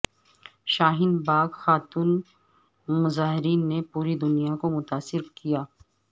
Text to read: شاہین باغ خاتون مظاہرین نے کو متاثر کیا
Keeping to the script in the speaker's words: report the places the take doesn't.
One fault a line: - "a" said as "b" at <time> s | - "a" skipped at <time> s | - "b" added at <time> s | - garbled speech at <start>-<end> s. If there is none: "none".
- "پوری دنیا" added at 3.9 s